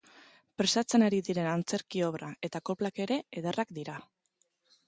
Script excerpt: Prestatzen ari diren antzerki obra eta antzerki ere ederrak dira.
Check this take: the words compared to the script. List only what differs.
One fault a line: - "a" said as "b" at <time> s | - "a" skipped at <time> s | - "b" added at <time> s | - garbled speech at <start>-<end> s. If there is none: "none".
- "antzerki" said as "koplak" at 2.7 s